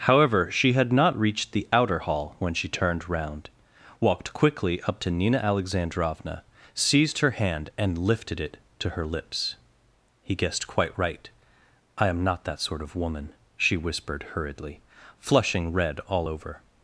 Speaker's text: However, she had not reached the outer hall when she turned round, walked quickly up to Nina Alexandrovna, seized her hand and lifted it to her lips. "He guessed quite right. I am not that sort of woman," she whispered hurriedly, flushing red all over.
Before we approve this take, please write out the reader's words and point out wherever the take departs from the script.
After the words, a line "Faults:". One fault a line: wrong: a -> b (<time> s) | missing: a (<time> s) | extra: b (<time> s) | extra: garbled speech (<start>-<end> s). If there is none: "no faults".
However, she had not reached the outer hall when she turned round, walked quickly up to Nina Alexandrovna, seized her hand and lifted it to her lips. "He guessed quite right. I am not that sort of woman," she whispered hurriedly, flushing red all over.
Faults:
no faults